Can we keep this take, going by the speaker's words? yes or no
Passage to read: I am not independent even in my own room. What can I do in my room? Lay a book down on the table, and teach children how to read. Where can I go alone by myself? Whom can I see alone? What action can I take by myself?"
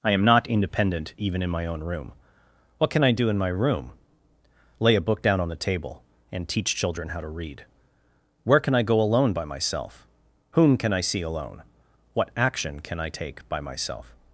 yes